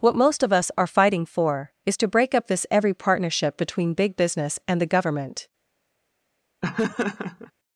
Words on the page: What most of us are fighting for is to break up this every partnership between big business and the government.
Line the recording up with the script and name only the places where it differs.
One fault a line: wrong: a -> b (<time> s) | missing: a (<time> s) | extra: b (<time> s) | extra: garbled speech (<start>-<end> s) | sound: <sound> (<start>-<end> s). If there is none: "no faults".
sound: laugh (6.6-7.5 s)